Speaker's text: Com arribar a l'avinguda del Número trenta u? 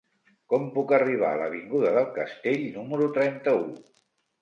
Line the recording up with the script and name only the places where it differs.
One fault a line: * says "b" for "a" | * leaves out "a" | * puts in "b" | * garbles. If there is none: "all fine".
* puts in "puc"
* puts in "Castell"